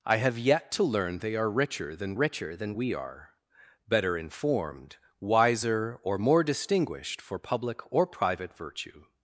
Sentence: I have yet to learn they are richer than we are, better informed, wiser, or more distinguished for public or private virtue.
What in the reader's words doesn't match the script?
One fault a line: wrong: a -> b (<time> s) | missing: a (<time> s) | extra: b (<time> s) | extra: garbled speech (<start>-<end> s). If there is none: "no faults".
extra: richer than (2.1 s)